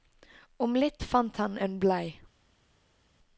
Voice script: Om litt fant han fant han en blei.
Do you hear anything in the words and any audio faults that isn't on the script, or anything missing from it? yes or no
yes